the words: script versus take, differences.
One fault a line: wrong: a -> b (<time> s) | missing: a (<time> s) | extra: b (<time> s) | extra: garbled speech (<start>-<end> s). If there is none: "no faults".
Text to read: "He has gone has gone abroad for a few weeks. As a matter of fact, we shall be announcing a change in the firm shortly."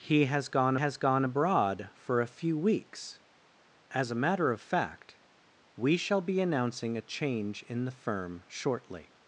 no faults